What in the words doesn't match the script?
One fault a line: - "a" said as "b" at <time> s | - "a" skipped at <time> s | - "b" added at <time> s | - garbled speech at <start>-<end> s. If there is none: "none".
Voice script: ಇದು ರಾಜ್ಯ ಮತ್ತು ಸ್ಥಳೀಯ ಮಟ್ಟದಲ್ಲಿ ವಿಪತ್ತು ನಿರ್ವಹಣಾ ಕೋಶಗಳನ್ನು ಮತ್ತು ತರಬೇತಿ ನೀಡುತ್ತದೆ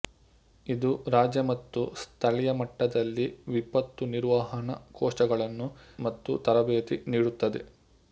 none